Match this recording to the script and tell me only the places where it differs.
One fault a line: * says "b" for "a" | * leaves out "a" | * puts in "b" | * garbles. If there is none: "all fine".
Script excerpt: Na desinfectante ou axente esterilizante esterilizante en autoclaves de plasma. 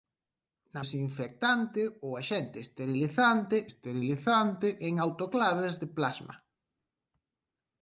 all fine